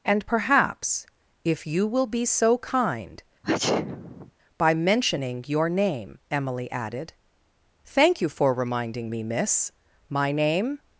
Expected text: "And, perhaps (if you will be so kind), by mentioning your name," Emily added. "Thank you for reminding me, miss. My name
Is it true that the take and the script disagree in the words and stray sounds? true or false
true